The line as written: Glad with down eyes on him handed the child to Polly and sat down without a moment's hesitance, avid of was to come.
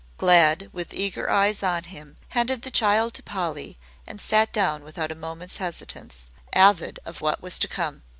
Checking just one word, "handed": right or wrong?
right